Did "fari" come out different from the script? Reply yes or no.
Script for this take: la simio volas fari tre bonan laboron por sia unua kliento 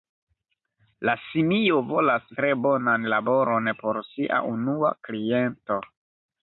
yes